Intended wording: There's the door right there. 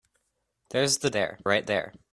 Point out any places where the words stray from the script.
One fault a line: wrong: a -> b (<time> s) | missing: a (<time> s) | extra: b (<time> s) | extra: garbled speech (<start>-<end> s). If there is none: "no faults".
wrong: door -> there (1.1 s)